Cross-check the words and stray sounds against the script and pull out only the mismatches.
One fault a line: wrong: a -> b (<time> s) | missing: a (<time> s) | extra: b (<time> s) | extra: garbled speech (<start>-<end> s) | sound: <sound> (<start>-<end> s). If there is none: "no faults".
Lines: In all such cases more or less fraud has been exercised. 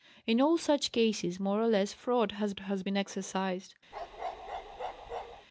extra: has (2.6 s)
sound: bark (3.9-5.5 s)